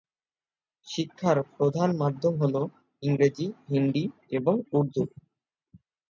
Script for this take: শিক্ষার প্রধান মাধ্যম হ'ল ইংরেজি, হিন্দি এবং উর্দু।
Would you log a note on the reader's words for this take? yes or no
no